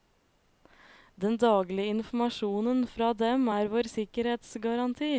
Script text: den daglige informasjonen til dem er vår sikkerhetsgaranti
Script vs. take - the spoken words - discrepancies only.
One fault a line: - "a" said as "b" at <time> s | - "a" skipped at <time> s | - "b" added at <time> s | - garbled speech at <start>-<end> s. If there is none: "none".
- "til" said as "fra" at 2.9 s